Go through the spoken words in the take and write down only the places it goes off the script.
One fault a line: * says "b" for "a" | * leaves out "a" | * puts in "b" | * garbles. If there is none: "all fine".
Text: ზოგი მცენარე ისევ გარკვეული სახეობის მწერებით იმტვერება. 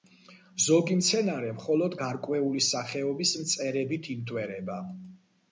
* says "მხოლოდ" for "ისევ"